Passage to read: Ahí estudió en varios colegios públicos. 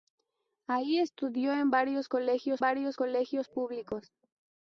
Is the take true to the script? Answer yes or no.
no